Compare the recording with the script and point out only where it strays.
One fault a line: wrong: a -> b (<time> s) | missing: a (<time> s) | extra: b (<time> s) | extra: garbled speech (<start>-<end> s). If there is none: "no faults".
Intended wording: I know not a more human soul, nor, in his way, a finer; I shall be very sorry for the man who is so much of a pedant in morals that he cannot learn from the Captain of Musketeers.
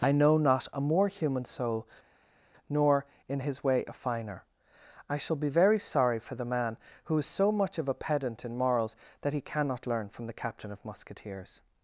no faults